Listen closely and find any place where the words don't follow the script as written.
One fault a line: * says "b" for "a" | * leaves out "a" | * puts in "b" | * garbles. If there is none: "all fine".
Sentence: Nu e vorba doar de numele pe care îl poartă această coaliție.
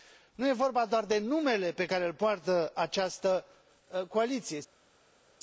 all fine